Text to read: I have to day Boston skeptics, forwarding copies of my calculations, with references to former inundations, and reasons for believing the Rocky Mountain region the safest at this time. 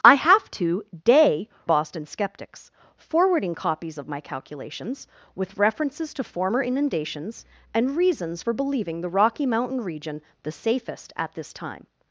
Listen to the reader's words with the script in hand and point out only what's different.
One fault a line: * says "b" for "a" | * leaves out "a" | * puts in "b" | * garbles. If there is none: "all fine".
all fine